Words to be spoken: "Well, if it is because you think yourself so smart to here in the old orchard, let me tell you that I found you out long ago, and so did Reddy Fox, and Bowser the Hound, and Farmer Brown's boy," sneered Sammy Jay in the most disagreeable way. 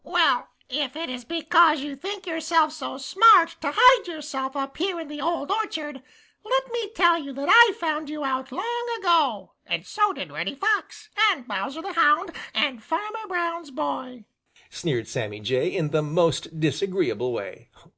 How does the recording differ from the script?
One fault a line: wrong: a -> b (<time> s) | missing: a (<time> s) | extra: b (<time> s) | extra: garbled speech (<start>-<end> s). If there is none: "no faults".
extra: hide yourself up (3.8 s)